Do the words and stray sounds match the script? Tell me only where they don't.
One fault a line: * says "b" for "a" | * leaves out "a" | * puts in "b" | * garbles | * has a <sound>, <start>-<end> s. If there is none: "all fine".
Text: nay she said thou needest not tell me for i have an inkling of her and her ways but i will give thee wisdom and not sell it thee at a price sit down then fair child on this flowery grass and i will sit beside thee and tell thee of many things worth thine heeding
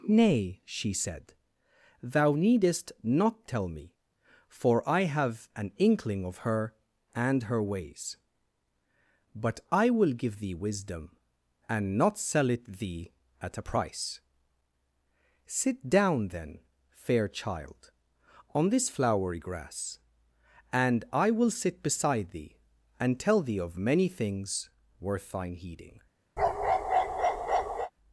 * has a bark, 26.4-27.9 s